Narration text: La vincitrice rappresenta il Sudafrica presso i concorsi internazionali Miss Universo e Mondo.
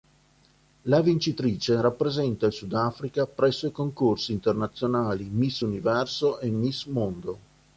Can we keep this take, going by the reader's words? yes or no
no